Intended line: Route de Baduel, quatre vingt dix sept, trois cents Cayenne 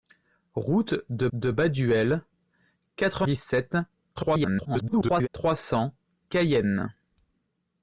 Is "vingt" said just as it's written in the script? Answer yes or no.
no